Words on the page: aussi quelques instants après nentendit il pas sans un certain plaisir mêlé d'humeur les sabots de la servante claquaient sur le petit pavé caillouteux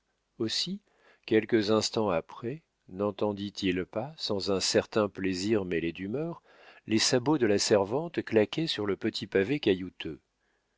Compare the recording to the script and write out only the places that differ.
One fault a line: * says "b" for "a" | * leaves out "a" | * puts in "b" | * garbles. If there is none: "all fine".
all fine